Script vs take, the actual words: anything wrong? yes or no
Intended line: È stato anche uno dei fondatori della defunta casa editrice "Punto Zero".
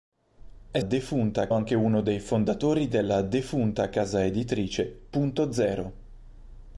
yes